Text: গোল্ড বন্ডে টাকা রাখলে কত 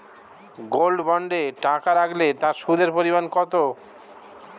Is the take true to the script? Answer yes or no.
no